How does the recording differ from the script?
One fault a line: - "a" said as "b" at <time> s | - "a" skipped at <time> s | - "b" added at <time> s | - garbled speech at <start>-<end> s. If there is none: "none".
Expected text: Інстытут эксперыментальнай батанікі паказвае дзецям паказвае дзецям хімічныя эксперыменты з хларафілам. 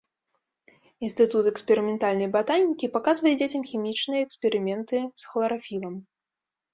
- "паказвае дзецям" skipped at 3.6 s